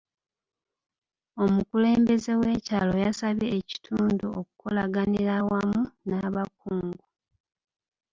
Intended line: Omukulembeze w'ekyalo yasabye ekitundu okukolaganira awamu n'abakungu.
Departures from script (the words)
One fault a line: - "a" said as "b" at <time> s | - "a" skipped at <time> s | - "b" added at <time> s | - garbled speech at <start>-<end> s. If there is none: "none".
none